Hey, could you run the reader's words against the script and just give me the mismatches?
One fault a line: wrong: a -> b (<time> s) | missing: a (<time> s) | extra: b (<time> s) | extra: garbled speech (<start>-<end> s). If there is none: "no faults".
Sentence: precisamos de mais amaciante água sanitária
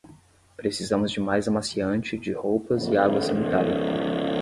extra: de roupas e (2.2 s)